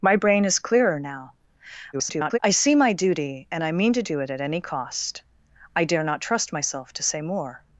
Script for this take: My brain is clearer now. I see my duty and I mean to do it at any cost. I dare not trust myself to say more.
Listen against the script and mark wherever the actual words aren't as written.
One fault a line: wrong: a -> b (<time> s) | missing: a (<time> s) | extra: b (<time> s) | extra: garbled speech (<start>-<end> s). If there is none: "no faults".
extra: garbled speech (1.9-2.4 s)